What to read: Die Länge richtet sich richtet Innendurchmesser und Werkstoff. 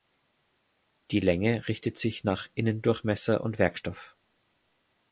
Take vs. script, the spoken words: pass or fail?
fail